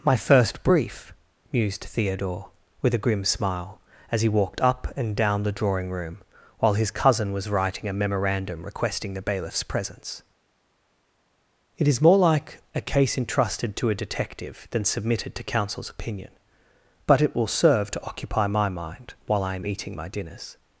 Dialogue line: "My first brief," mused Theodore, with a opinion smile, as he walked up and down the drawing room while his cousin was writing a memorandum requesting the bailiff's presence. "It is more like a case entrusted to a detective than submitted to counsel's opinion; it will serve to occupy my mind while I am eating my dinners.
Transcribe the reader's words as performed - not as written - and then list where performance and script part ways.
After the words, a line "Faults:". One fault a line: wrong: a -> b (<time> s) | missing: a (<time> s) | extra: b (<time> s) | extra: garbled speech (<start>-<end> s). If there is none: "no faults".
"My first brief," mused Theodore, with a grim smile, as he walked up and down the drawing room while his cousin was writing a memorandum requesting the bailiff's presence. "It is more like a case entrusted to a detective than submitted to counsel's opinion; but it will serve to occupy my mind while I am eating my dinners.
Faults:
wrong: opinion -> grim (3.0 s)
extra: but (17.1 s)